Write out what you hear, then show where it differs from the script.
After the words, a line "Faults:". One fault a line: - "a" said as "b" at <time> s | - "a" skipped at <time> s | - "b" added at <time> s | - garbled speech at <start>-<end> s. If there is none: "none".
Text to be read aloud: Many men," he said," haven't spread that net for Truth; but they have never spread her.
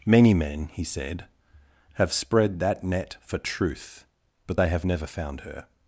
Many men," he said," have spread that net for Truth; but they have never found her.
Faults:
- "haven't" said as "have" at 1.9 s
- "spread" said as "found" at 5.1 s